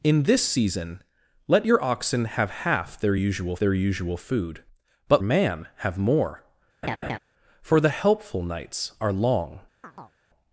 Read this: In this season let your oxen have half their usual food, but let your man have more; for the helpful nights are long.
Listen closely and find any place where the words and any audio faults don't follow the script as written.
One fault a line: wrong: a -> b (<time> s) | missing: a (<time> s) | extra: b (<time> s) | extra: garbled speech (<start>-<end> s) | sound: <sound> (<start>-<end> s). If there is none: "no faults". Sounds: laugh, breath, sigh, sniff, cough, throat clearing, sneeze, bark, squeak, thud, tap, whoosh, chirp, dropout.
extra: their usual (3.6 s)
missing: let your (5.2 s)
sound: laugh (6.8-7.2 s)
sound: chirp (9.8-10.2 s)